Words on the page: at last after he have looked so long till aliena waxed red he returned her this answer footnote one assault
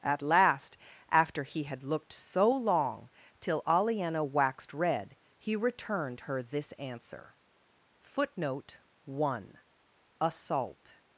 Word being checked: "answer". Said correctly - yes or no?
yes